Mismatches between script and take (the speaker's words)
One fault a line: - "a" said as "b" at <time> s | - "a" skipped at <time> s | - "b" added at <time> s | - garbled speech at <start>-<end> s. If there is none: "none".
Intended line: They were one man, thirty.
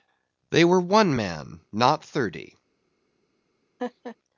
- "not" added at 1.7 s